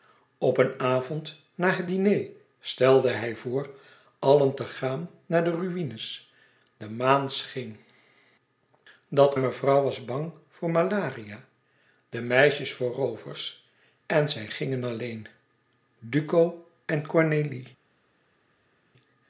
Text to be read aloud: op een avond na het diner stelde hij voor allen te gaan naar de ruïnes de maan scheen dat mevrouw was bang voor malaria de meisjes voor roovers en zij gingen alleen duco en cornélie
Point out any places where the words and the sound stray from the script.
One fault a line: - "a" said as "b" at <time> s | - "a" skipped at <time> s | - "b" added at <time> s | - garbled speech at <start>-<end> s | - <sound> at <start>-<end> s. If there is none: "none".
none